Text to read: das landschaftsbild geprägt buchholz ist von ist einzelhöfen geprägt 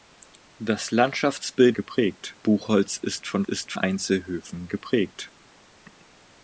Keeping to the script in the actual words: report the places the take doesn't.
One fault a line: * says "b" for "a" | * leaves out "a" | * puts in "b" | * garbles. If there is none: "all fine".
all fine